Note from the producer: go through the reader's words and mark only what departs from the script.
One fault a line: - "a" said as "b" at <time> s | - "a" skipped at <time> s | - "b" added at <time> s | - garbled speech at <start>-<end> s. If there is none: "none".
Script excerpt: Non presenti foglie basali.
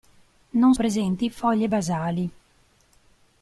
none